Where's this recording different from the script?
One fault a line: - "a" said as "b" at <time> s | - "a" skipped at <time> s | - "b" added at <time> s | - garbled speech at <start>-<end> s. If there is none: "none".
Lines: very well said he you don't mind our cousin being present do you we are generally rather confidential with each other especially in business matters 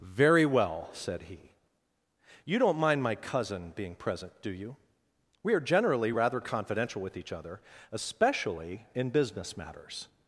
- "our" said as "my" at 3.0 s